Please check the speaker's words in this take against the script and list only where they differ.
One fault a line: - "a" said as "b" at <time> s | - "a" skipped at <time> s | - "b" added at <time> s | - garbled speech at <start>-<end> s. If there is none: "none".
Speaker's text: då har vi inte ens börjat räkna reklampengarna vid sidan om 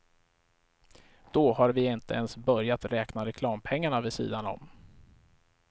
none